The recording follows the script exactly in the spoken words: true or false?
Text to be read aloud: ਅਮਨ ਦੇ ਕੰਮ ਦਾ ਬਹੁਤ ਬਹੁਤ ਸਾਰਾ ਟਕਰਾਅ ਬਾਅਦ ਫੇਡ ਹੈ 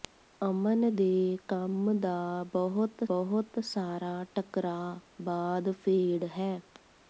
true